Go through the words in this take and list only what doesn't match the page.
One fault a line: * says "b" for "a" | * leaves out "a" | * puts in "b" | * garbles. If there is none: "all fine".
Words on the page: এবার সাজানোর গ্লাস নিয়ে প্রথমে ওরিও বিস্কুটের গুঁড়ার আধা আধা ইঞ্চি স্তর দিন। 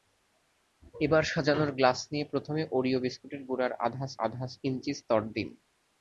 all fine